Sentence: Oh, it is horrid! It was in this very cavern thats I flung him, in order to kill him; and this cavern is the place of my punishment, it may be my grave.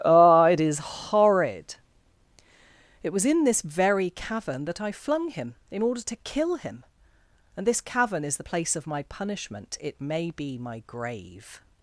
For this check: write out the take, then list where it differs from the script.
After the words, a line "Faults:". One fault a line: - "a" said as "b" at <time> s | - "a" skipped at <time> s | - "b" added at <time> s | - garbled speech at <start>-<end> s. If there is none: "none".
Oh, it is horrid! It was in this very cavern that I flung him, in order to kill him; and this cavern is the place of my punishment, it may be my grave.
Faults:
- "thats" said as "that" at 4.7 s